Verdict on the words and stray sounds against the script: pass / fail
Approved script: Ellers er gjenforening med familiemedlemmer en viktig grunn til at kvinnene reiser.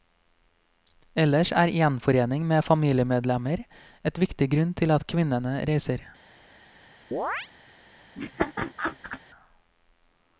fail